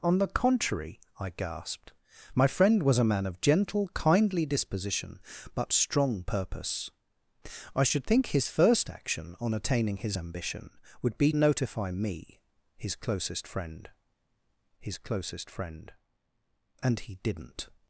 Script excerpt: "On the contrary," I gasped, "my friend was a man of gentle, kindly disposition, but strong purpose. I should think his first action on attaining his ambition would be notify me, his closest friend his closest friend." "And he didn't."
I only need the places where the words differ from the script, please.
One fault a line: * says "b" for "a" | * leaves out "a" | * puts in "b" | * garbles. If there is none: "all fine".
all fine